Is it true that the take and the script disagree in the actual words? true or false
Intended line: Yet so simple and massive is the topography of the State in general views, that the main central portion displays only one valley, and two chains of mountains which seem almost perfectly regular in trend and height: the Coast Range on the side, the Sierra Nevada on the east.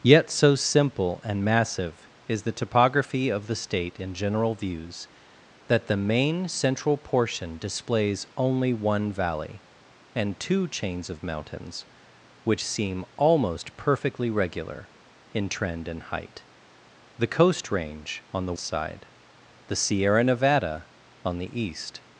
false